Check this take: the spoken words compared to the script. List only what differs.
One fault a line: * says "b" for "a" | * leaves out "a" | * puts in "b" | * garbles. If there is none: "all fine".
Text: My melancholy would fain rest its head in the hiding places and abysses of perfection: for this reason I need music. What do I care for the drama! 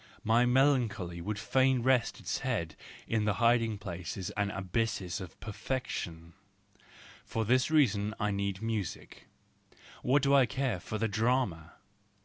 all fine